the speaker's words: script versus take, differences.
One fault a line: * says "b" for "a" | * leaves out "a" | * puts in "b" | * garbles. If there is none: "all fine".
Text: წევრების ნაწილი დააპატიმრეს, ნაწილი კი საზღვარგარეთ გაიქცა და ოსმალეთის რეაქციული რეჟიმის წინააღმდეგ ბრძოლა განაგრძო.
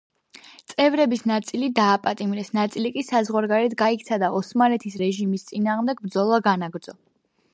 * leaves out "რეაქციული"